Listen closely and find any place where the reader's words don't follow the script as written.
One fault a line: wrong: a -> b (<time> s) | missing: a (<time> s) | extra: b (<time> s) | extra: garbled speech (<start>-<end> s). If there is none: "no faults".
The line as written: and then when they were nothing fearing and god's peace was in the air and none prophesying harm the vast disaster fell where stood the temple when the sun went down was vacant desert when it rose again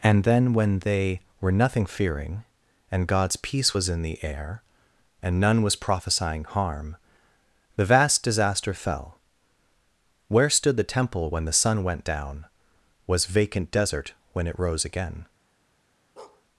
extra: was (5.6 s)